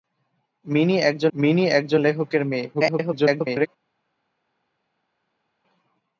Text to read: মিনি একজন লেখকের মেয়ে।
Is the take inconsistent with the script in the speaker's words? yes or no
yes